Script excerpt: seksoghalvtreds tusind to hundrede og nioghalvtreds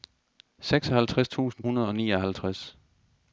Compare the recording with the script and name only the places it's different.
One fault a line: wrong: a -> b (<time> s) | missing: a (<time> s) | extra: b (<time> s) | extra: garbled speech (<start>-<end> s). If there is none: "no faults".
missing: to (1.6 s)